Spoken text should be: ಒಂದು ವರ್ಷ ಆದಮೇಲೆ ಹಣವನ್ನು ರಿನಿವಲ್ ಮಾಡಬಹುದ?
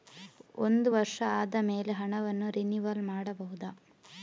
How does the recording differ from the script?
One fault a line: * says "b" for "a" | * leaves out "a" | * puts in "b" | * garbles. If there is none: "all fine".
all fine